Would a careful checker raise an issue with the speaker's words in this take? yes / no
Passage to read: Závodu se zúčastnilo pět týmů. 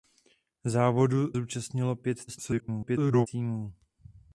yes